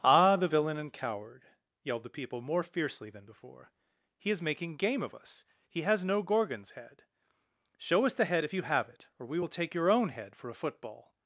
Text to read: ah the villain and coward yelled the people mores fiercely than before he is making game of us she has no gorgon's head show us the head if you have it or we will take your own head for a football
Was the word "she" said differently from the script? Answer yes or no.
yes